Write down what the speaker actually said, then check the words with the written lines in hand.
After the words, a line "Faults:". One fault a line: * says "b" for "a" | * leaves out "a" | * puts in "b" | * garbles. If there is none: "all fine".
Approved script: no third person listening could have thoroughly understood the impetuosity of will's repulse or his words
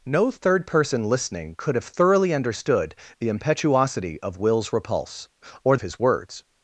no third person listening could have thoroughly understood the impetuosity of will's repulse or his words
Faults:
all fine